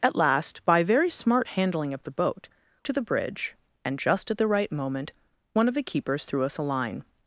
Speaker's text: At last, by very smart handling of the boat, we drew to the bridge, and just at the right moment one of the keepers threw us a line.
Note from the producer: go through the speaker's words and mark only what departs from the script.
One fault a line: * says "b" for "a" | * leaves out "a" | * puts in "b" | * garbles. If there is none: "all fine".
* leaves out "we drew"